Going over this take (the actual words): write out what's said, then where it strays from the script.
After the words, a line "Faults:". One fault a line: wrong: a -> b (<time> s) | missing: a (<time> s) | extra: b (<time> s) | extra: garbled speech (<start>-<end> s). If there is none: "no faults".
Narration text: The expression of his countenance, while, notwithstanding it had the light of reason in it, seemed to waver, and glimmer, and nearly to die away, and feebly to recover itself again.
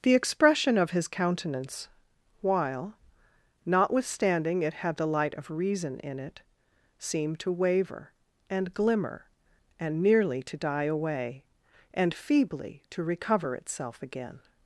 The expression of his countenance, while, notwithstanding it had the light of reason in it, seemed to waver, and glimmer, and nearly to die away, and feebly to recover itself again.
Faults:
no faults